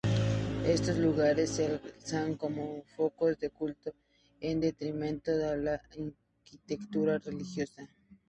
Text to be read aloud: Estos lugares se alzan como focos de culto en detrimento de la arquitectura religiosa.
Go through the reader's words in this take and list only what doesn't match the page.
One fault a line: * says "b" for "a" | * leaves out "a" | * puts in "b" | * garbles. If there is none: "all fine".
all fine